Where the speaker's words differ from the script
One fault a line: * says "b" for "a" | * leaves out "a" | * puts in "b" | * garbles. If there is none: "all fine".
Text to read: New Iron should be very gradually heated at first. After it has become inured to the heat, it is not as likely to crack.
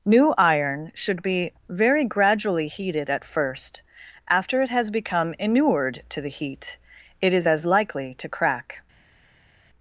* leaves out "not"